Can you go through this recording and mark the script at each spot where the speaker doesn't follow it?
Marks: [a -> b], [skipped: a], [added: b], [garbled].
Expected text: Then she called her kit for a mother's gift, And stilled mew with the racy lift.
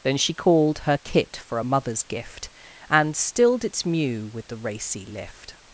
Then she called her kit for a mother's gift, And stilled [added: its] mew with the racy lift.